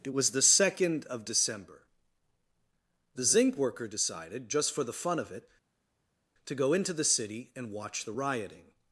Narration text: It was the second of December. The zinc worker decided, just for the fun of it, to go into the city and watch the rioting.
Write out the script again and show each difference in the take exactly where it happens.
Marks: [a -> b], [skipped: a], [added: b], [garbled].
It was the second of December. The zinc worker decided, just for the fun of it, to go into the city and watch the rioting.